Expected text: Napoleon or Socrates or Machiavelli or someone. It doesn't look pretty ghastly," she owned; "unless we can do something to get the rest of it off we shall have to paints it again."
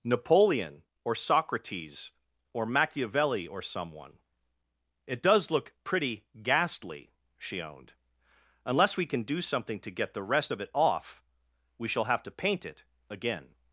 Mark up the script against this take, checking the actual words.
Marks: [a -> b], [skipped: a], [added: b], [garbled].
Napoleon or Socrates or Machiavelli or someone. It [doesn't -> does] look pretty ghastly," she owned; "unless we can do something to get the rest of it off we shall have to [paints -> paint] it again."